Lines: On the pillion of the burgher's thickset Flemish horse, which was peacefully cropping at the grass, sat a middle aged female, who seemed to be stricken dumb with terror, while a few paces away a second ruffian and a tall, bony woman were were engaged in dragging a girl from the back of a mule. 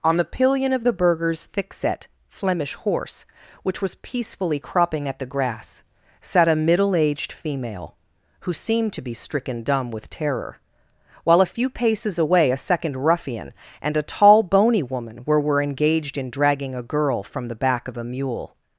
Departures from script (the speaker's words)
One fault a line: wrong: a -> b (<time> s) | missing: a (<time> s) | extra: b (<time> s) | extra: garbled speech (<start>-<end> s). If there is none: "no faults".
no faults